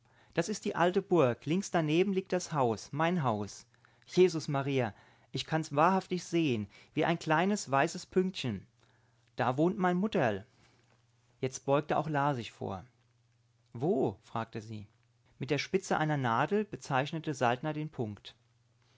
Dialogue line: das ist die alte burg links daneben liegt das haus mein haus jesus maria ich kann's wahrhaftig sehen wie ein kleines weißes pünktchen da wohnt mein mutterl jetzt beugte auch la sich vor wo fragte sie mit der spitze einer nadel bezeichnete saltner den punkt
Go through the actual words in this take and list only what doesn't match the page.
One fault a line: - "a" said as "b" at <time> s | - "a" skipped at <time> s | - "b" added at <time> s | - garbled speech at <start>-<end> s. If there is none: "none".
none